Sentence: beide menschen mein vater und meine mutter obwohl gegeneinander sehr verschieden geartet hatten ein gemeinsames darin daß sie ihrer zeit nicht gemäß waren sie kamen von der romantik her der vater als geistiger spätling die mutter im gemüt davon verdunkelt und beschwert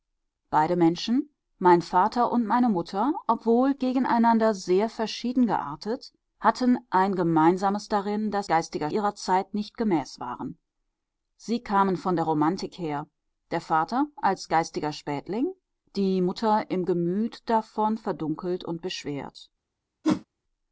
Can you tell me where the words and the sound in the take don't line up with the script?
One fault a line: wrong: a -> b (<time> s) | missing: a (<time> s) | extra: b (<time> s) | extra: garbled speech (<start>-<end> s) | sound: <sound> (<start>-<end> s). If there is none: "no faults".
wrong: sie -> geistiger (8.5 s)
sound: whoosh (20.0-20.3 s)